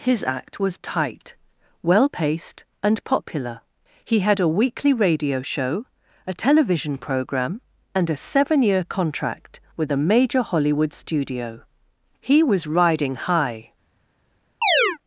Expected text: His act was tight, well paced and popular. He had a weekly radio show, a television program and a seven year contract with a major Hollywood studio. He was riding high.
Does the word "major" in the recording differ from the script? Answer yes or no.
no